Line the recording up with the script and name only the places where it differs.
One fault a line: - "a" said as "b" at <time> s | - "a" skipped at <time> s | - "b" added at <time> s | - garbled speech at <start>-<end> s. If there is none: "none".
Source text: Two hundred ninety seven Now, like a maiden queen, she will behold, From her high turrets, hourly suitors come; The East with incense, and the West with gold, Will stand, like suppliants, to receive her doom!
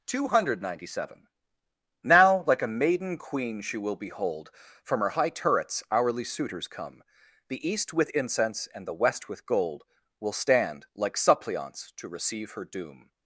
none